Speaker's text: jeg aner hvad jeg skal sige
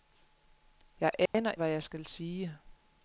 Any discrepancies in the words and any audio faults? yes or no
yes